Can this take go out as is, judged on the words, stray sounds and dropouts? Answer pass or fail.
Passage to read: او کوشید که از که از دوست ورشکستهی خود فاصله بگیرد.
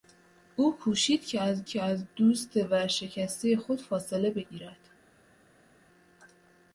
pass